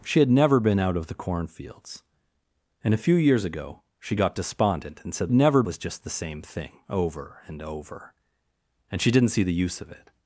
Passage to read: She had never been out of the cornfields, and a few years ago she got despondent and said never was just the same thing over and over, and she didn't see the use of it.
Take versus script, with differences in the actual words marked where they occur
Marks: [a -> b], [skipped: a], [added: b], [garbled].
She had never been out of the cornfields, and a few years ago she got despondent and said never was just the same thing over and over, and she didn't see the use of it.